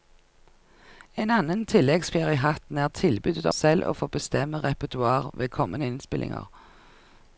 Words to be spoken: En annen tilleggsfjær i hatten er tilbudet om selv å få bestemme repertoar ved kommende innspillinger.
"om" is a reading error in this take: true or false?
true